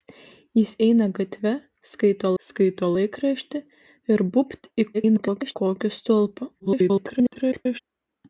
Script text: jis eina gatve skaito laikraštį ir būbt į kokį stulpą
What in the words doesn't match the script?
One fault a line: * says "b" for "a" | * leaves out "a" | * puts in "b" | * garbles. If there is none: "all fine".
* puts in "skaito"
* garbles
* garbles